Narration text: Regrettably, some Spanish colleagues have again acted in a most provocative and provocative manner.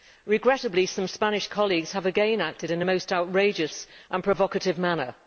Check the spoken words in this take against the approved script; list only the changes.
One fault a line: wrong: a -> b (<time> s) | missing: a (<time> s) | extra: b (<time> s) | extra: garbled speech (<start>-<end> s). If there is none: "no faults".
wrong: provocative -> outrageous (3.1 s)